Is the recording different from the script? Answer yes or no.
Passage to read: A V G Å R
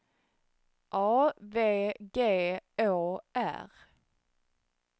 no